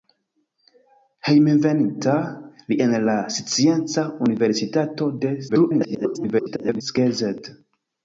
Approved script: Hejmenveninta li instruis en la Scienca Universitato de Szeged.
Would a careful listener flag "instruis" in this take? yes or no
yes